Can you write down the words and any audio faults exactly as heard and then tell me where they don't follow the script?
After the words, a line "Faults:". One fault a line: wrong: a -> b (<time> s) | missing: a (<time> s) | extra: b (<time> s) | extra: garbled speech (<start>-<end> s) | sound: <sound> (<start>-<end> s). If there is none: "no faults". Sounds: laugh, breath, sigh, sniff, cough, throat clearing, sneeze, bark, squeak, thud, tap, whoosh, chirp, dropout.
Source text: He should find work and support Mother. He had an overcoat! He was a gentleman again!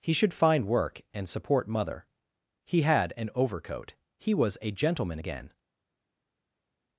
He should find work and support Mother. He had an overcoat! He was a gentleman again!
Faults:
no faults